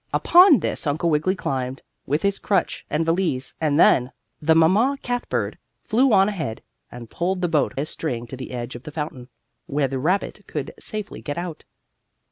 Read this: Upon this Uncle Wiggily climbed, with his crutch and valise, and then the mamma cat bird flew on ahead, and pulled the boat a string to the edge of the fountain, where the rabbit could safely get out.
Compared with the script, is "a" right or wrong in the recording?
right